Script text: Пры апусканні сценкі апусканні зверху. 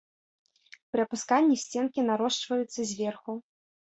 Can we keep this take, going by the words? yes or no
no